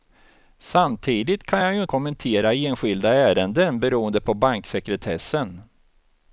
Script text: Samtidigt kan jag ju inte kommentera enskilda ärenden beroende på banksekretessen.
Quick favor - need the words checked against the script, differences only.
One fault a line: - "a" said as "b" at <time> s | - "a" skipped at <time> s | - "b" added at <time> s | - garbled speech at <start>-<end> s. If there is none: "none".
- "inte" skipped at 1.8 s